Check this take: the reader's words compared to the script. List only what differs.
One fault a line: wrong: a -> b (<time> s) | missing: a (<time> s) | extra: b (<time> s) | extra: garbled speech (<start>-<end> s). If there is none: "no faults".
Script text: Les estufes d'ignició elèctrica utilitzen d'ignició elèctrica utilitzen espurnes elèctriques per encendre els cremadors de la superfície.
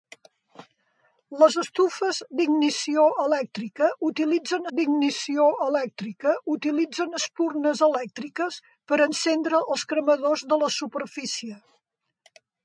no faults